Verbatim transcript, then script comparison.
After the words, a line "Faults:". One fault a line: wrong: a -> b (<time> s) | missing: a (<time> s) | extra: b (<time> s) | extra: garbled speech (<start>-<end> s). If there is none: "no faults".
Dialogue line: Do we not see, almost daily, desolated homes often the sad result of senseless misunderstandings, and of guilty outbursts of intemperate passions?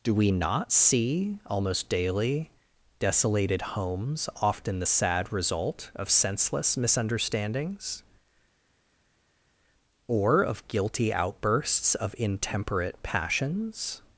Do we not see, almost daily, desolated homes often the sad result of senseless misunderstandings, or of guilty outbursts of intemperate passions?
Faults:
wrong: and -> or (10.1 s)